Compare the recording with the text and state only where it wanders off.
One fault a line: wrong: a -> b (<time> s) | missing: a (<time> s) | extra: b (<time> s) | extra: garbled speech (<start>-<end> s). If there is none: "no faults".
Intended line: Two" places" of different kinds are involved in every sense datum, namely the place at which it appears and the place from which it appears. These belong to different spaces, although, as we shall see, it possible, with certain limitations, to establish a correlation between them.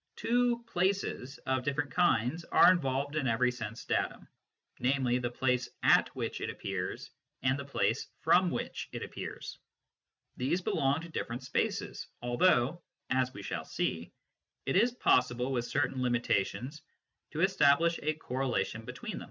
extra: is (14.8 s)